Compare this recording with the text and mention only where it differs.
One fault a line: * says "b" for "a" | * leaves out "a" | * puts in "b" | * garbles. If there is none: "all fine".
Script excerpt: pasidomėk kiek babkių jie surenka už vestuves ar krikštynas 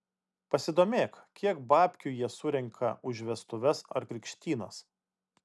all fine